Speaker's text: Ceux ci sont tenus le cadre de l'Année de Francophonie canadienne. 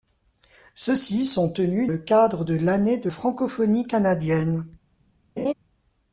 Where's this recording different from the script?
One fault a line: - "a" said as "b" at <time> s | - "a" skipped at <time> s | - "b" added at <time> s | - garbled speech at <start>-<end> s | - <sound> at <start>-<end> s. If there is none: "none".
- laugh at 5.4-5.5 s